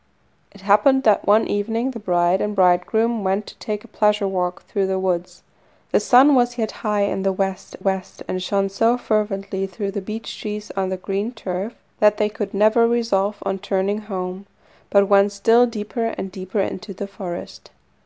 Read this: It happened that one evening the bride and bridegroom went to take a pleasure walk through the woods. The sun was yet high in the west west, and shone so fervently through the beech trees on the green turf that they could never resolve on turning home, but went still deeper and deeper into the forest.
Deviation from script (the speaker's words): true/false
false